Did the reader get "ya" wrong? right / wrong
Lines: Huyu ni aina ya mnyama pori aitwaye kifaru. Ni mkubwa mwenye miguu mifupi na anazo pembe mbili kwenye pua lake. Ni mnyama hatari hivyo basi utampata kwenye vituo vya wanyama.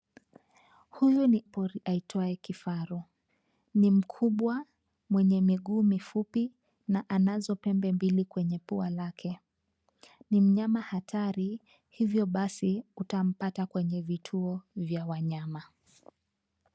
wrong